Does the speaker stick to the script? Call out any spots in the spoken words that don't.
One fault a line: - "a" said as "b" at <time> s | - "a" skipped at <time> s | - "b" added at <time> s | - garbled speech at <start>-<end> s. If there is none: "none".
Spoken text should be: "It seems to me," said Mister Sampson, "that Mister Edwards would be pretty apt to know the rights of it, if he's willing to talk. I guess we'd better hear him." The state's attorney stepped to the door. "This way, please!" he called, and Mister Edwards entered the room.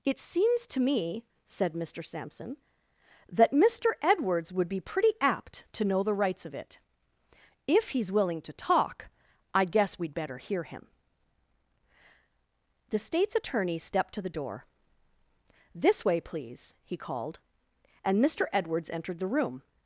none